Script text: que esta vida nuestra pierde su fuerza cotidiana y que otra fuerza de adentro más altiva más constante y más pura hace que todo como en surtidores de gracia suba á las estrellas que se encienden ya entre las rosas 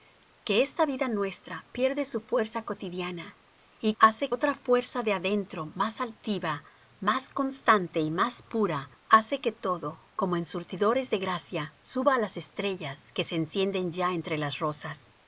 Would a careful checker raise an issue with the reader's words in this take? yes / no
yes